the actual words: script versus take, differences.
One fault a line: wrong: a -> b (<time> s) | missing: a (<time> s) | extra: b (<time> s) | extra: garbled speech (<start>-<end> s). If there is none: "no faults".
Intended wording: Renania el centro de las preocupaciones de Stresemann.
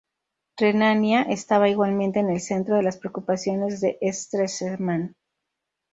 extra: estaba igualmente en (1.2 s)